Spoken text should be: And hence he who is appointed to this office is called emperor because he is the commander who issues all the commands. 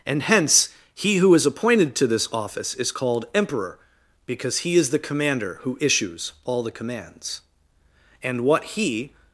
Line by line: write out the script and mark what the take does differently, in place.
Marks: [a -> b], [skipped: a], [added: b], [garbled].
And hence he who is appointed to this office is called emperor because he is the commander who issues all the commands. [added: And what he]